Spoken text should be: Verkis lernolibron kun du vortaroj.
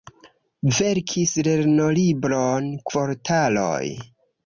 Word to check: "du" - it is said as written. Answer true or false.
false